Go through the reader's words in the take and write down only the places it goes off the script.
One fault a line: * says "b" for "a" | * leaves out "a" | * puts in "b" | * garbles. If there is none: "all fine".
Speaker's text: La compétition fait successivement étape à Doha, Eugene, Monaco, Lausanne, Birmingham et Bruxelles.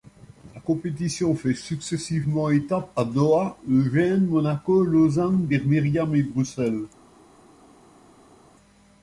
all fine